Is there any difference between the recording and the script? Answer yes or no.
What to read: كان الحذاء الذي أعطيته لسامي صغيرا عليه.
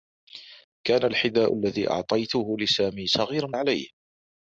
no